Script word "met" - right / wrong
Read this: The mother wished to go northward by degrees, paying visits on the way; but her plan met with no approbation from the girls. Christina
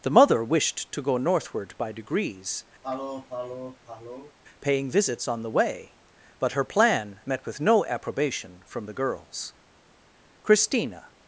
right